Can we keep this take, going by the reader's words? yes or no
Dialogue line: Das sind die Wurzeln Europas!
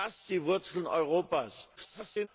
no